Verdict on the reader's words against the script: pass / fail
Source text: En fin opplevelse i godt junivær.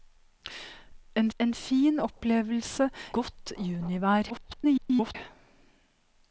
fail